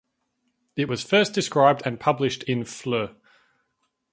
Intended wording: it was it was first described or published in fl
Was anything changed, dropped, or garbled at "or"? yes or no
yes